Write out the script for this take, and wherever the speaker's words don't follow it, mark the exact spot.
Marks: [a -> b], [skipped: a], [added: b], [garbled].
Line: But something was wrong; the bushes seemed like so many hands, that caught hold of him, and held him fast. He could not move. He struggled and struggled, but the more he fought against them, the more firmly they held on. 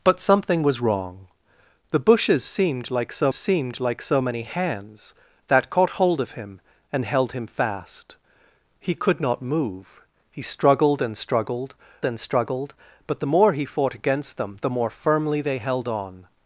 But something was wrong; the bushes seemed like so [added: seemed like so] many hands, that caught hold of him, and held him fast. He could not move. He struggled and struggled, [added: and struggled] but the more he fought against them, the more firmly they held on.